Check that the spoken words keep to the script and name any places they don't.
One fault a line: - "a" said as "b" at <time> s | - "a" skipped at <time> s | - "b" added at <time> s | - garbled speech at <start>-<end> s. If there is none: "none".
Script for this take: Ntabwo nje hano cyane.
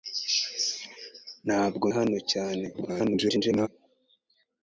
- "nje" skipped at 1.9 s
- garbled speech at 2.7-3.7 s